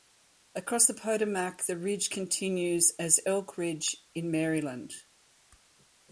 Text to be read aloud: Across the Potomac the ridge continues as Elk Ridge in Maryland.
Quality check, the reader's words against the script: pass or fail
pass